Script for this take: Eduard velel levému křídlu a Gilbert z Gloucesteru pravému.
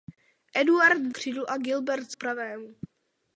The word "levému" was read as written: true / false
false